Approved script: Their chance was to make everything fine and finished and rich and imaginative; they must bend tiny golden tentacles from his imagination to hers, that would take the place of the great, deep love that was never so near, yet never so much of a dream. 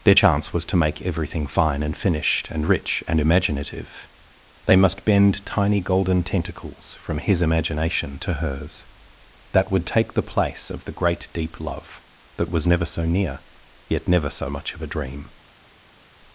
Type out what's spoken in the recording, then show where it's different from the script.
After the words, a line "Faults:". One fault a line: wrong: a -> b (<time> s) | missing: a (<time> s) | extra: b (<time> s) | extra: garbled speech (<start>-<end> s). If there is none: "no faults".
Their chance was to make everything fine and finished and rich and imaginative; they must bend tiny golden tentacles from his imagination to hers, that would take the place of the great, deep love that was never so near, yet never so much of a dream.
Faults:
no faults